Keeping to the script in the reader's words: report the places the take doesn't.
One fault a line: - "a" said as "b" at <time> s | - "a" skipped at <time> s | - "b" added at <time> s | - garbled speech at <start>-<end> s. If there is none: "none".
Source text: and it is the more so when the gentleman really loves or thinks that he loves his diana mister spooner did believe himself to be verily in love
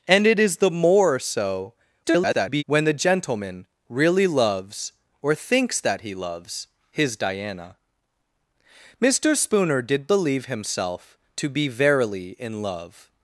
- garbled speech at 2.0-2.6 s